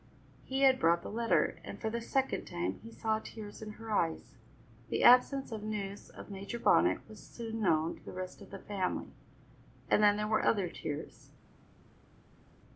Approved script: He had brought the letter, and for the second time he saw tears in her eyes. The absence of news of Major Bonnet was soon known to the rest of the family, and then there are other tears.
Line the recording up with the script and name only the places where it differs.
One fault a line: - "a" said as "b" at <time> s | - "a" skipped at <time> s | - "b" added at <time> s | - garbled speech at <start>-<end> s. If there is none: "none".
- "are" said as "were" at 10.3 s